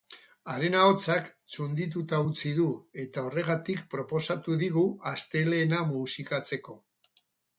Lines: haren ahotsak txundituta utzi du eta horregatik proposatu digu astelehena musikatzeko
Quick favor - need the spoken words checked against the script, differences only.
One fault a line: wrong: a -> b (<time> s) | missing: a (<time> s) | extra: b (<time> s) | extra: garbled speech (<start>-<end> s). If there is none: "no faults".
no faults